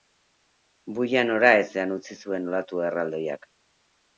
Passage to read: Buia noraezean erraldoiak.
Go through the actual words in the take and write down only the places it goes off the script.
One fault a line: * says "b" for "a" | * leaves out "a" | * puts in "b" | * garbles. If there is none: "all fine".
* puts in "utzi zuen olatu"